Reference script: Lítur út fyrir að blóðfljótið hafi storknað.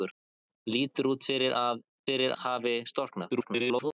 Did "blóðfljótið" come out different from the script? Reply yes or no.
yes